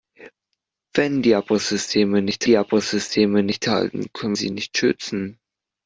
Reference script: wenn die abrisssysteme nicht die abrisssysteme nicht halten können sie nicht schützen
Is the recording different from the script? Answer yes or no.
no